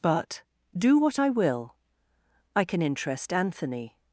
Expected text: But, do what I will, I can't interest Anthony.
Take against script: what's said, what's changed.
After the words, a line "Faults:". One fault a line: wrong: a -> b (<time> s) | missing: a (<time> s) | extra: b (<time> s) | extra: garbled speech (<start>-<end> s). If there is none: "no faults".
But, do what I will, I can interest Anthony.
Faults:
wrong: can't -> can (2.6 s)